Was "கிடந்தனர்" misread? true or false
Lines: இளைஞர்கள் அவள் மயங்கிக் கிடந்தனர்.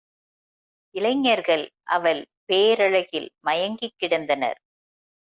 false